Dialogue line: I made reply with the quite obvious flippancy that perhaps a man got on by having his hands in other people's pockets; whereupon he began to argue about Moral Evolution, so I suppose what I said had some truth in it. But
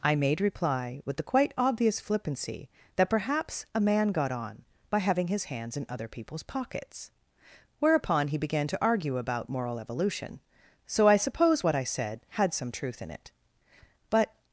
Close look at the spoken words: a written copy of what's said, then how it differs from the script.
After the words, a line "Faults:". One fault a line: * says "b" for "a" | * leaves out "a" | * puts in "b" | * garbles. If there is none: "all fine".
I made reply with the quite obvious flippancy that perhaps a man got on by having his hands in other people's pockets; whereupon he began to argue about Moral Evolution, so I suppose what I said had some truth in it. But
Faults:
all fine